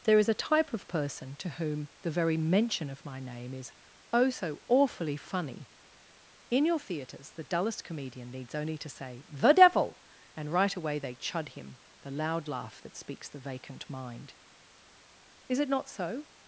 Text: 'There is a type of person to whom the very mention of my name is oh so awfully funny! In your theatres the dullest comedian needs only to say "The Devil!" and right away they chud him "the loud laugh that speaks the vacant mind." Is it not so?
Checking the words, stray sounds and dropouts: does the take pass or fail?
pass